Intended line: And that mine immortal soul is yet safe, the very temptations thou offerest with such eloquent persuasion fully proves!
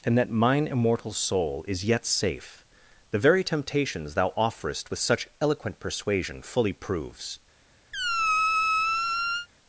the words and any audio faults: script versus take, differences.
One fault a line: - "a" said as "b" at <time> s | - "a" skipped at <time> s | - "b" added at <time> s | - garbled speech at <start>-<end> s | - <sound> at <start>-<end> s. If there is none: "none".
- squeak at 7.9-9.5 s